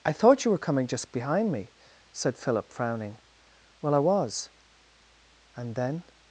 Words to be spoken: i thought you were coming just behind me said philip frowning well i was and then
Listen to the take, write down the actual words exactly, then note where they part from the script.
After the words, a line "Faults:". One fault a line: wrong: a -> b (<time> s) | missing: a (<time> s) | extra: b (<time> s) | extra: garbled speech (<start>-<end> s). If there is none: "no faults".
i thought you were coming just behind me said philip frowning well i was and then
Faults:
no faults